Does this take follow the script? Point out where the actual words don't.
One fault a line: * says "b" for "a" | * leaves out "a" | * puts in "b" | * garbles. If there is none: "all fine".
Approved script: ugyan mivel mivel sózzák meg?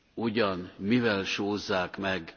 * leaves out "mivel"